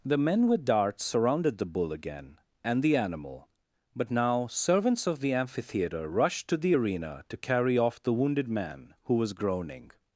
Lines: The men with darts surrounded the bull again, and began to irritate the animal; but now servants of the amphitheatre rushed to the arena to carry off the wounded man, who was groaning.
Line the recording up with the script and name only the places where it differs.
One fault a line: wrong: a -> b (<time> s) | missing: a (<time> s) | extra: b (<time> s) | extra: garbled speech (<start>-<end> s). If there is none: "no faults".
missing: began to irritate (2.8 s)